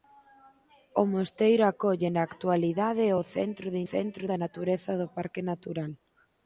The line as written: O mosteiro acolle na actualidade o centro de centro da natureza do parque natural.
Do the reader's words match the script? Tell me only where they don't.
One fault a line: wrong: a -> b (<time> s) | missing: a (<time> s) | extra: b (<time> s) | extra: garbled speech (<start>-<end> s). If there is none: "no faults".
no faults